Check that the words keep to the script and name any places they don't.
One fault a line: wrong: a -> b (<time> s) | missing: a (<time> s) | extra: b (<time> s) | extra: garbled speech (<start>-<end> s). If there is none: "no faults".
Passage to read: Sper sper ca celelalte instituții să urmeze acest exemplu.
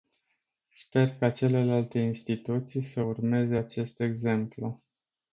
missing: sper (1.2 s)